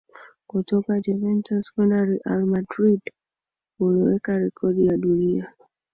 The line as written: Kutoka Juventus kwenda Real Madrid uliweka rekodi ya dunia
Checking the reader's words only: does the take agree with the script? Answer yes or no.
yes